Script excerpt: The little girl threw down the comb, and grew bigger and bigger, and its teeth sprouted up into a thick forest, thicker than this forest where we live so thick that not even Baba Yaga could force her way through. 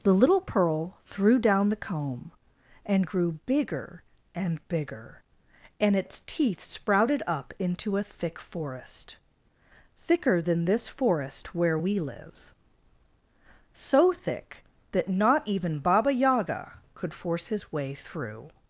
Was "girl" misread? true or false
true